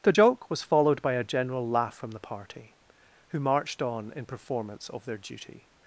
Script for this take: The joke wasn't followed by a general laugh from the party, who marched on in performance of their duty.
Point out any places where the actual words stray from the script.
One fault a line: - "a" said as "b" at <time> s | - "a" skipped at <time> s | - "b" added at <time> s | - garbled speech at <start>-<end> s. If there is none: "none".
- "wasn't" said as "was" at 0.5 s